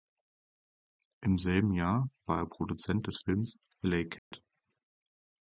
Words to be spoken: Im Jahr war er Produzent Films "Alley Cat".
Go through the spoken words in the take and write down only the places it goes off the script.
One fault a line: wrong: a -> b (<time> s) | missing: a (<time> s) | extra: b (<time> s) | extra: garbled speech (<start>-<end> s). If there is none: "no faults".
extra: selben (1.4 s)
extra: des (3.0 s)